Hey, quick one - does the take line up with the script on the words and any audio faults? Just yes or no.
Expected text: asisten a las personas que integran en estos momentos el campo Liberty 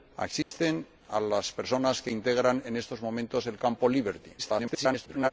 no